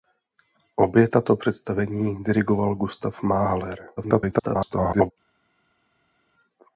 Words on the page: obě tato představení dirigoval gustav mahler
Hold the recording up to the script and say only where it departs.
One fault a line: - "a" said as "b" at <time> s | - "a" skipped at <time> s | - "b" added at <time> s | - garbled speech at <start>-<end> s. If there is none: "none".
- garbled speech at 4.0-5.1 s